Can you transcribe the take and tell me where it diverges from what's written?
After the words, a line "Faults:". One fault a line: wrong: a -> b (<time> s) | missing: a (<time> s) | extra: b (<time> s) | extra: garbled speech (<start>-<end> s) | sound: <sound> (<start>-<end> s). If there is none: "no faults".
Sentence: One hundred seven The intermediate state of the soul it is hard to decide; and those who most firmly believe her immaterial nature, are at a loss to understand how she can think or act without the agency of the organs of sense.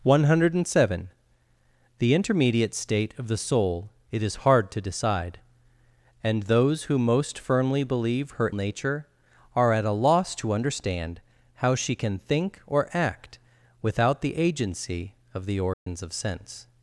One hundred seven The intermediate state of the soul it is hard to decide; and those who most firmly believe her nature, are at a loss to understand how she can think or act without the agency of the organs of sense.
Faults:
missing: immaterial (8.5 s)
sound: dropout (15.7-15.9 s)